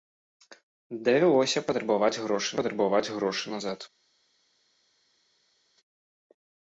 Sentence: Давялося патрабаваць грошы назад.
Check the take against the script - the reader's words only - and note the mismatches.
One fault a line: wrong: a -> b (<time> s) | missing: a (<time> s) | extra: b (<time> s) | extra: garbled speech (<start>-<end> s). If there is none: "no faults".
extra: патрабаваць грошы (2.6 s)